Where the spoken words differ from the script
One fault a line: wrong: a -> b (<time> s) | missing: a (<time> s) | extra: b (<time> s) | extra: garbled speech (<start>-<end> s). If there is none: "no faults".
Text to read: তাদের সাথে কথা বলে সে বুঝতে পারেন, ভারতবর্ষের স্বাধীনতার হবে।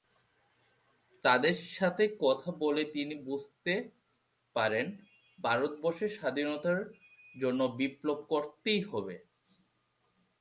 wrong: সে -> তিনি (2.9 s)
extra: জন্য বিপ্লব করতেই (7.3 s)